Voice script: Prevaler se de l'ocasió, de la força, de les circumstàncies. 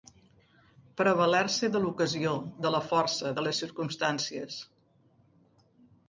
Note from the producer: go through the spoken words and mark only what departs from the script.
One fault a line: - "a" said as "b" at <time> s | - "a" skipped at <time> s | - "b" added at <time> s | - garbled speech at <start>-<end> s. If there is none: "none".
none